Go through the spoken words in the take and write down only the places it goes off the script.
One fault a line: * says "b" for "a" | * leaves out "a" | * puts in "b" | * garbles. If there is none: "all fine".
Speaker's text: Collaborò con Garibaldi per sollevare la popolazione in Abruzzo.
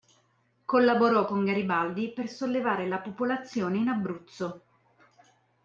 all fine